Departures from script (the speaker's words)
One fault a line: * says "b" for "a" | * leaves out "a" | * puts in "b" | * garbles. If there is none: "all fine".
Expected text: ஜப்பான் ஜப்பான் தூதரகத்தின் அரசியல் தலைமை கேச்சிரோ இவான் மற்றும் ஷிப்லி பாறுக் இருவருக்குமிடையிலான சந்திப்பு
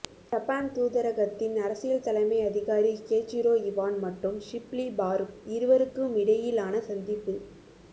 * leaves out "ஜப்பான்"
* puts in "அதிகாரி"